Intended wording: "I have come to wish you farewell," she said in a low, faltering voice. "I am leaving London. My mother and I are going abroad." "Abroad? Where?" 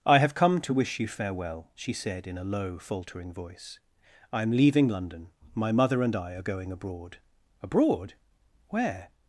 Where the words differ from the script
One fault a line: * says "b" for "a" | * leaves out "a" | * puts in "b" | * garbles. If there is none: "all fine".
all fine